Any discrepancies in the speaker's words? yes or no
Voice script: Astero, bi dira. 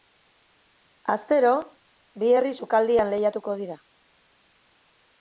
yes